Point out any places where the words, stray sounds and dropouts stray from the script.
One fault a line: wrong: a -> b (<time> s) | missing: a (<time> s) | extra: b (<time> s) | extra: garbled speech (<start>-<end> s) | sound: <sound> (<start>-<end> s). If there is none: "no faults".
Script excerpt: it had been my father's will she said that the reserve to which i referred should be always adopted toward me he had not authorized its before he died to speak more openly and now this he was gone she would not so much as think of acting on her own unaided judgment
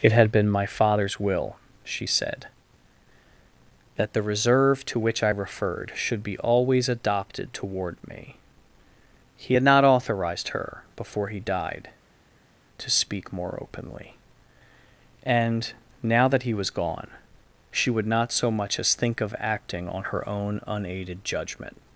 wrong: its -> her (10.5 s)
wrong: this -> that (16.3 s)